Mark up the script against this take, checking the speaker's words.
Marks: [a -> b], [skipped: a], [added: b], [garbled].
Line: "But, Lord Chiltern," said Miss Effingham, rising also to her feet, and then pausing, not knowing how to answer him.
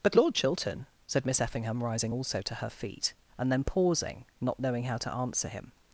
"But, Lord Chiltern," said Miss Effingham, rising also to her feet, and then pausing, not knowing how to answer him.